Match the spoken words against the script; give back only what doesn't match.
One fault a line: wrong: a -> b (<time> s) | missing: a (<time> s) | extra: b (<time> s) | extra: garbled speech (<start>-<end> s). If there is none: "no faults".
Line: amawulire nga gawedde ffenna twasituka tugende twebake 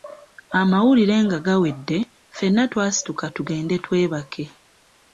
no faults